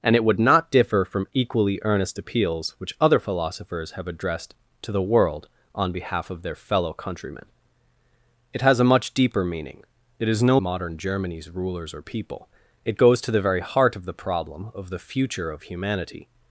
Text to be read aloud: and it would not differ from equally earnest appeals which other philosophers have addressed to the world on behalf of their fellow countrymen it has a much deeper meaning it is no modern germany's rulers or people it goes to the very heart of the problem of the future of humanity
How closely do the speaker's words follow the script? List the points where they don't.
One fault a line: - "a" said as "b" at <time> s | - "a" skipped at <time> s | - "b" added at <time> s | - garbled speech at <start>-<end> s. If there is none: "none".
none